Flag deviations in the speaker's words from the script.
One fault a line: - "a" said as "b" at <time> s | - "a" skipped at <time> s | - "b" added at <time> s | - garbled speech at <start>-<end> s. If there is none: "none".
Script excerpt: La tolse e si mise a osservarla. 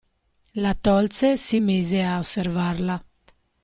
none